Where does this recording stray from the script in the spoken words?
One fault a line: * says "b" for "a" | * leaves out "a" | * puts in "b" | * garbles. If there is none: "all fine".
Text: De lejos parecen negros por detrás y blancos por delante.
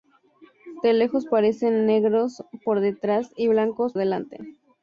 * leaves out "por"